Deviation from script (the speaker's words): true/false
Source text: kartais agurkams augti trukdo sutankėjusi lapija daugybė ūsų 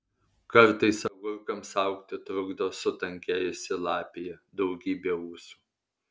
false